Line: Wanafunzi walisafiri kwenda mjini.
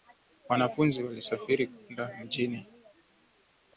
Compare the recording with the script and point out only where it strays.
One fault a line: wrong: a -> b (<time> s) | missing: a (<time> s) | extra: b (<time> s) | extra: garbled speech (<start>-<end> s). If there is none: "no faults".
no faults